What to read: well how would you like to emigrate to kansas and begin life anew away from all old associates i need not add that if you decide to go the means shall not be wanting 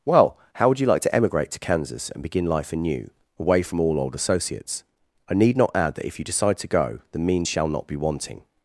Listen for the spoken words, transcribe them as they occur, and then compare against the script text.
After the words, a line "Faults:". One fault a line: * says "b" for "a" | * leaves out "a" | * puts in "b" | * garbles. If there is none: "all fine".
well how would you like to emigrate to kansas and begin life anew away from all old associates i need not add that if you decide to go the means shall not be wanting
Faults:
all fine